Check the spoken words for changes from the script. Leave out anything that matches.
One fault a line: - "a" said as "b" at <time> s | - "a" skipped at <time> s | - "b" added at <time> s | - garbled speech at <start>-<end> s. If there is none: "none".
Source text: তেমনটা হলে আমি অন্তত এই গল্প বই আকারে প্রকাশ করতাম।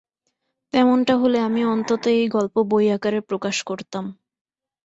none